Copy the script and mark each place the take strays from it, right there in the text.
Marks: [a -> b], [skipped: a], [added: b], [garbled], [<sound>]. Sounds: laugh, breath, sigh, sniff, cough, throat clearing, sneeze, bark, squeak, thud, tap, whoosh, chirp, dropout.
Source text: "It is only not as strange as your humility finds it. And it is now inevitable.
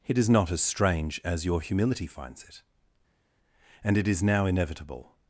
"It is [skipped: only] not as strange as your humility finds it. And it is now inevitable.